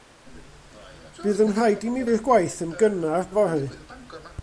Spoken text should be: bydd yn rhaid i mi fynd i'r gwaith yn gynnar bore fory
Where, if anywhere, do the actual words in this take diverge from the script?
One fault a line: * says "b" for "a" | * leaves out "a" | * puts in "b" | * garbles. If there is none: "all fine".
* leaves out "fynd"
* leaves out "bore"